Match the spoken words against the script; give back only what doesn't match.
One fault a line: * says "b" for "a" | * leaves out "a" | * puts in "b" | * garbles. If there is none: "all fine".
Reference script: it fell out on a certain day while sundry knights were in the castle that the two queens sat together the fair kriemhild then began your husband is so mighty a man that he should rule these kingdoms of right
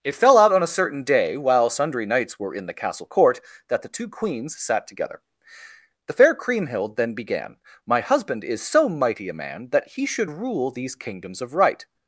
* puts in "court"
* says "my" for "your"